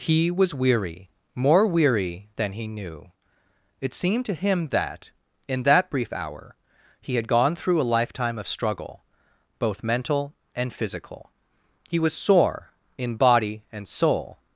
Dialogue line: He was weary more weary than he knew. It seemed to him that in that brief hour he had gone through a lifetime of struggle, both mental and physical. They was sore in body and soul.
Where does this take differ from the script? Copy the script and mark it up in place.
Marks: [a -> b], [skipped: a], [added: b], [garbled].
He was weary more weary than he knew. It seemed to him that in that brief hour he had gone through a lifetime of struggle, both mental and physical. [They -> He] was sore in body and soul.